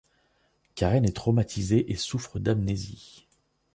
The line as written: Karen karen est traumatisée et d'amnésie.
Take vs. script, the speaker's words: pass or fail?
fail